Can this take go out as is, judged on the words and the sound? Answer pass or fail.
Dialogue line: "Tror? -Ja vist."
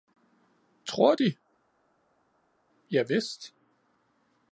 fail